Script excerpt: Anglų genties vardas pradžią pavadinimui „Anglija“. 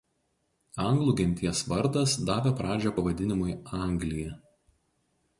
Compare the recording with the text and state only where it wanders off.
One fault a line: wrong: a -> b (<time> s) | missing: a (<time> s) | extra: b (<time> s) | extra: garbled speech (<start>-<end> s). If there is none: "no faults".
extra: davė (2.3 s)